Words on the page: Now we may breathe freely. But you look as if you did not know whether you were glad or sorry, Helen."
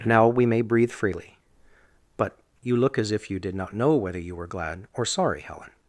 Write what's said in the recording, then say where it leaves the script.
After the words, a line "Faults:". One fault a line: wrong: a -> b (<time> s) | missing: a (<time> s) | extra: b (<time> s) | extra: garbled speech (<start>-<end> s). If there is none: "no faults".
Now we may breathe freely. But you look as if you did not know whether you were glad or sorry, Helen."
Faults:
no faults